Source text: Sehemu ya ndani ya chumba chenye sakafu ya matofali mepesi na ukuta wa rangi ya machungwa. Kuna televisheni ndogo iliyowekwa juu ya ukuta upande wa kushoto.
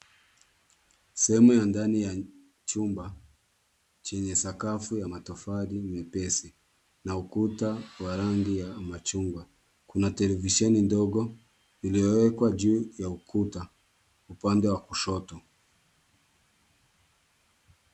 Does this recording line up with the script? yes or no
yes